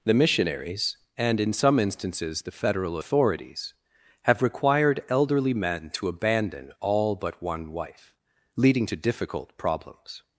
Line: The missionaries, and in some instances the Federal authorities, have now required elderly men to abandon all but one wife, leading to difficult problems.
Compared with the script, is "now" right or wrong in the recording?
wrong